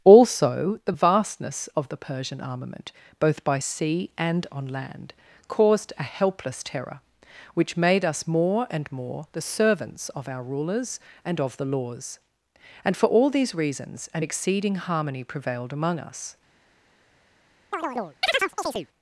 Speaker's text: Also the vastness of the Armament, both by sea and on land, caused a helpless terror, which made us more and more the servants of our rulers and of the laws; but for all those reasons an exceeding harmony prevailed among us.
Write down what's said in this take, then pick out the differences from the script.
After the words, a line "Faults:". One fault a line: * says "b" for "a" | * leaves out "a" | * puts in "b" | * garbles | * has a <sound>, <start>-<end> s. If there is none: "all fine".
Also the vastness of the Persian armament, both by sea and on land, caused a helpless terror, which made us more and more the servants of our rulers and of the laws; and for all these reasons an exceeding harmony prevailed among us.
Faults:
* puts in "Persian"
* says "and" for "but"
* says "these" for "those"
* has a chirp, 17.7-18.9 s